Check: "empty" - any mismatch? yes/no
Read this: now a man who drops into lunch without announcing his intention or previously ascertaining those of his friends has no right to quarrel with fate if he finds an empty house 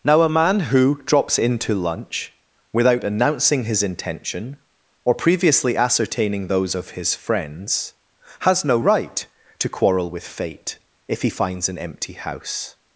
no